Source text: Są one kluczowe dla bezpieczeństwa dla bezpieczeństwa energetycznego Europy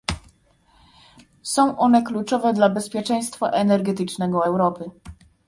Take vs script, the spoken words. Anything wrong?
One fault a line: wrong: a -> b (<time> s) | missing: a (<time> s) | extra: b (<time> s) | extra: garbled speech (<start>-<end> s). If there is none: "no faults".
missing: dla bezpieczeństwa (3.5 s)